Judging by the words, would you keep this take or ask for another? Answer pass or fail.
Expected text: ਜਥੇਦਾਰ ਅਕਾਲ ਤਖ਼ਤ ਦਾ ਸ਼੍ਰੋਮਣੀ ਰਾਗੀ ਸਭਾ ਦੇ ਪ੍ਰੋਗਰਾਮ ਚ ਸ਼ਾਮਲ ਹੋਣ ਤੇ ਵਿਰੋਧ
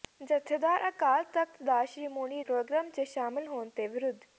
fail